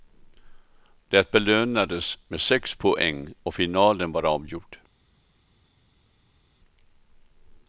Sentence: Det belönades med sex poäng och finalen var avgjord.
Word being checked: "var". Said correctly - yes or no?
yes